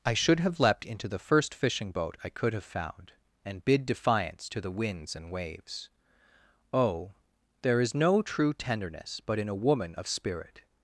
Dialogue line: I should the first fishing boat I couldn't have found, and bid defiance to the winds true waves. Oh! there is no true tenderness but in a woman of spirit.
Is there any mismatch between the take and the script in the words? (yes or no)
yes